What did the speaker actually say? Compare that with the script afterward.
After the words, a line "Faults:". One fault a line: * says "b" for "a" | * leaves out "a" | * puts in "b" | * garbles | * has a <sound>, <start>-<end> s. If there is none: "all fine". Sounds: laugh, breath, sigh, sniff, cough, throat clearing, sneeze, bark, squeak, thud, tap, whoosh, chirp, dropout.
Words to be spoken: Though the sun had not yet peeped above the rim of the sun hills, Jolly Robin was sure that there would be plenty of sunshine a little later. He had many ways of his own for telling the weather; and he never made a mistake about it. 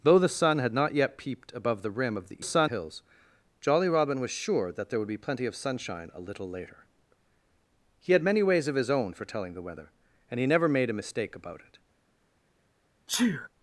Though the sun had not yet peeped above the rim of the sun hills, Jolly Robin was sure that there would be plenty of sunshine a little later. He had many ways of his own for telling the weather; and he never made a mistake about it.
Faults:
* has a sneeze, 13.1-13.5 s